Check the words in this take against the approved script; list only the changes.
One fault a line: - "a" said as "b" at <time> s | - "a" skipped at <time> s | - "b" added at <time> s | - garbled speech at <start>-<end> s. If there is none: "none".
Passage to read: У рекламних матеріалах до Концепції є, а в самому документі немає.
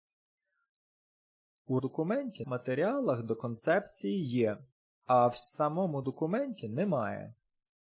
- "рекламних" said as "документі" at 1.8 s